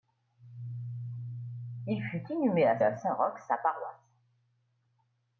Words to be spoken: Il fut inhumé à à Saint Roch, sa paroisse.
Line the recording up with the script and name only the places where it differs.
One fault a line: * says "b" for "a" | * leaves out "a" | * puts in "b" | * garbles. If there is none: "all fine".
all fine